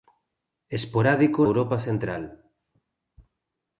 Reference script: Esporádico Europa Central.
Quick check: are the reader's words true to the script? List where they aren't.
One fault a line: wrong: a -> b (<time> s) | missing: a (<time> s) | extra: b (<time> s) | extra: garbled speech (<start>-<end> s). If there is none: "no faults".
no faults